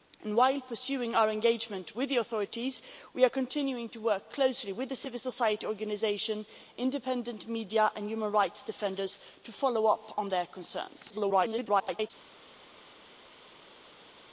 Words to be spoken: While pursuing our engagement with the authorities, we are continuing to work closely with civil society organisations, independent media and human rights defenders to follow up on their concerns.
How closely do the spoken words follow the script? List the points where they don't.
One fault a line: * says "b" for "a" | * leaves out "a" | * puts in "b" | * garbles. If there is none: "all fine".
* garbles